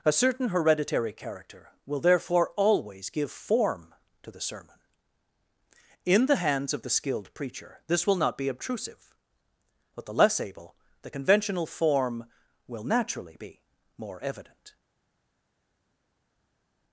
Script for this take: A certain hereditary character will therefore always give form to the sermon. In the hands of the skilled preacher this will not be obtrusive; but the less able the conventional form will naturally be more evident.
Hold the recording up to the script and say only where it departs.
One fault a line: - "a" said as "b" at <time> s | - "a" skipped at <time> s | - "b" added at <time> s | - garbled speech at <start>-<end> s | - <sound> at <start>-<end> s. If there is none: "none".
none